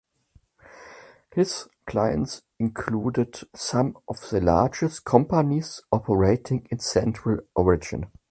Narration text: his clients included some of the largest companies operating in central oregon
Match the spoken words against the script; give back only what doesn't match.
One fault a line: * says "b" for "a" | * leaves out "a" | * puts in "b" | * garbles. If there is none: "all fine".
all fine